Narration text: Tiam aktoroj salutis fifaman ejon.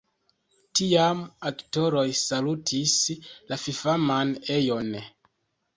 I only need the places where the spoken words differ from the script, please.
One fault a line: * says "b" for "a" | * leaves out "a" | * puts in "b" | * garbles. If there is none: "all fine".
* puts in "la"